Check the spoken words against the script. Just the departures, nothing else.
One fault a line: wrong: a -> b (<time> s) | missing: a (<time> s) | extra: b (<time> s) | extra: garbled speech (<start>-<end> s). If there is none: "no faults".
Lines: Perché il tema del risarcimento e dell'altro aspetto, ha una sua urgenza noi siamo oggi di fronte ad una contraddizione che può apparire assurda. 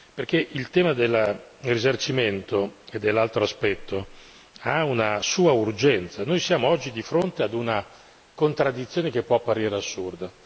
no faults